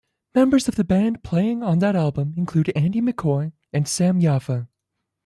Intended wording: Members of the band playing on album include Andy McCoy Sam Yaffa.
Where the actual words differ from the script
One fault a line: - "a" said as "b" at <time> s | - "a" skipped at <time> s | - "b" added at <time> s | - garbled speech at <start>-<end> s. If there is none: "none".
- "that" added at 1.8 s
- "and" added at 3.7 s